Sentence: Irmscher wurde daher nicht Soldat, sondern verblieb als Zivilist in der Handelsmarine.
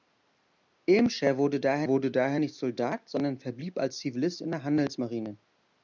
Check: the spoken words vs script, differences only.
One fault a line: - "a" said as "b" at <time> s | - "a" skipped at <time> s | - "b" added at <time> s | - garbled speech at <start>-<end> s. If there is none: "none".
- "wurde daher" added at 1.9 s